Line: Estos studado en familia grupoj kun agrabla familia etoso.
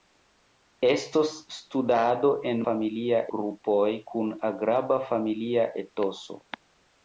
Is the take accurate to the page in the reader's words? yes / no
yes